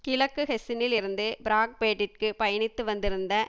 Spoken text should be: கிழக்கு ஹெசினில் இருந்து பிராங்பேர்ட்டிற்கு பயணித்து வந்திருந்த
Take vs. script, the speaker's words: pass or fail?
pass